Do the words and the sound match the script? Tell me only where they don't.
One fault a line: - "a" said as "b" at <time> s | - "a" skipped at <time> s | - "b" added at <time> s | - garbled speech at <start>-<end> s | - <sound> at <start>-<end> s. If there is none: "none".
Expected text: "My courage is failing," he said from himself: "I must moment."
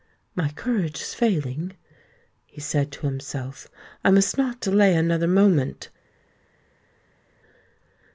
- "from" said as "to" at 2.9 s
- "not delay another" added at 4.4 s